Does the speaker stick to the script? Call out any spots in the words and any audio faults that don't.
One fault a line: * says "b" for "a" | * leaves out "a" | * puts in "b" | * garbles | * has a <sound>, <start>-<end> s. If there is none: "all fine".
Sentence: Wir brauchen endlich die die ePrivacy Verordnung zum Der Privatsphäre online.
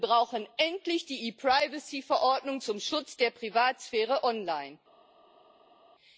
* leaves out "die"
* puts in "Schutz"